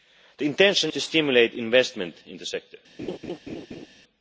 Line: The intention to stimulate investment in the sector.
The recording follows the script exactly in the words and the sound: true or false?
false